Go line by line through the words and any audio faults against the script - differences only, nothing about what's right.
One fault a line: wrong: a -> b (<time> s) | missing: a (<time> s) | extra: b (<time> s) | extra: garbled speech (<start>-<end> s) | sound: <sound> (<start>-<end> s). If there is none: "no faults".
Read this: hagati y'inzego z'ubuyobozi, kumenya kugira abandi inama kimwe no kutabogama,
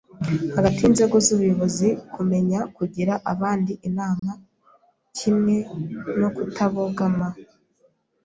sound: dropout (4.2-4.2 s)